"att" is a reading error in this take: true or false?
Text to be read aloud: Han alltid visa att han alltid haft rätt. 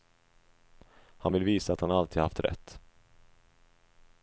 false